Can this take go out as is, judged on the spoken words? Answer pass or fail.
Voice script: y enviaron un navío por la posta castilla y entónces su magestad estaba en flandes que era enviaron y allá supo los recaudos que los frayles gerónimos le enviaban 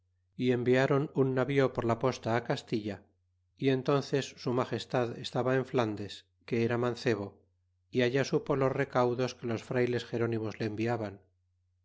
fail